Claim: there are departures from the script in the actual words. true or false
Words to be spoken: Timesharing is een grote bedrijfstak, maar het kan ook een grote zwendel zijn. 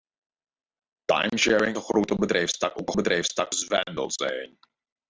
true